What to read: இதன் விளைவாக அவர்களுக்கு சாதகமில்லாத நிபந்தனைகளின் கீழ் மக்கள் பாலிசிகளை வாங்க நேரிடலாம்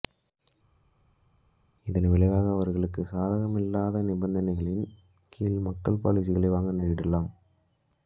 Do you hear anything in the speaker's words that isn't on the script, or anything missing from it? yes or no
no